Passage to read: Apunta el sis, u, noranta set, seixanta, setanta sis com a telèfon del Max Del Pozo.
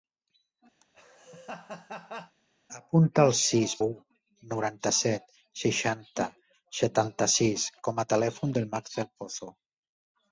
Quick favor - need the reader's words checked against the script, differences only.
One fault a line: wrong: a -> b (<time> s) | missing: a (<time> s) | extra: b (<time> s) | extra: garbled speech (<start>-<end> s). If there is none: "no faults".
no faults